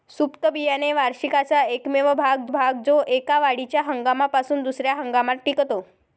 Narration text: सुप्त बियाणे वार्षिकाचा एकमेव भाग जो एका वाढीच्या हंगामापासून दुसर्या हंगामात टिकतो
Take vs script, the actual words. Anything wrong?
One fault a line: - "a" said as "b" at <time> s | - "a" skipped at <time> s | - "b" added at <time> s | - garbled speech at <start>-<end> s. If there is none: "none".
- "भाग" added at 2.5 s